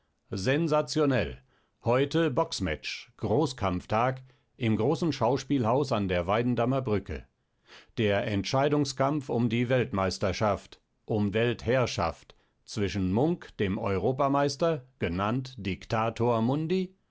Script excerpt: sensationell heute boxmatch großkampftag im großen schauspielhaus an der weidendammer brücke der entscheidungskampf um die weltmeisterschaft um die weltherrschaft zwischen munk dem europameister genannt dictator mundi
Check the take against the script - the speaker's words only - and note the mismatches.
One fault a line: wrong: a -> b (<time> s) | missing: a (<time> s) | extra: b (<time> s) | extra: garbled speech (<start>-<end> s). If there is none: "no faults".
missing: die (11.3 s)